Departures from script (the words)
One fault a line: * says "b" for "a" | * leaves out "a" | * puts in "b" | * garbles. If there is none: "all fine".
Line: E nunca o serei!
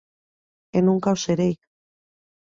all fine